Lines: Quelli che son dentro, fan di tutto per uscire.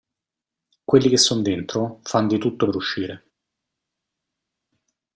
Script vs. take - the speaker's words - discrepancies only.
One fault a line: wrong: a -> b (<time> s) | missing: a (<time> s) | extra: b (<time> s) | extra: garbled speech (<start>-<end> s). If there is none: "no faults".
no faults